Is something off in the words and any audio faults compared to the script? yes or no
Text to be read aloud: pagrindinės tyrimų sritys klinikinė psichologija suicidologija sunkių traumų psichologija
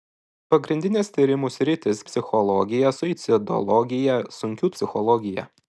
yes